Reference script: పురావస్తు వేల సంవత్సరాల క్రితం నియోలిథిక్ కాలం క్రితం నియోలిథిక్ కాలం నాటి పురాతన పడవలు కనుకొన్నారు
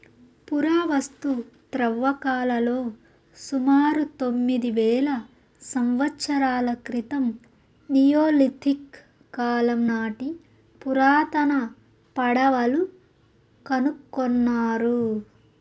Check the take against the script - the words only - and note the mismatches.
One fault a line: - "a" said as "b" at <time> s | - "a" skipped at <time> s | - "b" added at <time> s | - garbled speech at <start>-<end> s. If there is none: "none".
- "వేల సంవత్సరాల క్రితం నియోలిథిక్ కాలం" said as "త్రవ్వకాలలో సుమారు తొమ్మిది వేల సంవత్సరాల" at 1.7 s